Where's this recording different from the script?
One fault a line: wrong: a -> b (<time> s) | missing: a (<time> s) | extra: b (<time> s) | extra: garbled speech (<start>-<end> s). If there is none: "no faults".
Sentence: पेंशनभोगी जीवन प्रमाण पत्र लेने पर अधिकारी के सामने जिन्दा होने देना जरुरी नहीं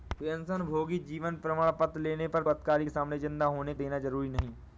no faults